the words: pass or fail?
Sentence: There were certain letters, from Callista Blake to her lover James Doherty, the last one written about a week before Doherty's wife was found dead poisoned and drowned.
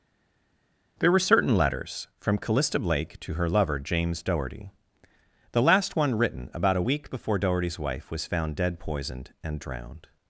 pass